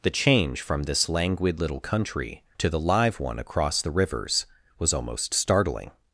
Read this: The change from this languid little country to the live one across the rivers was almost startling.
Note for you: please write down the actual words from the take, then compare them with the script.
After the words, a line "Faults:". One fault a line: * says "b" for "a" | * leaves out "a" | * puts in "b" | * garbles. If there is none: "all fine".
The change from this languid little country to the live one across the rivers was almost startling.
Faults:
all fine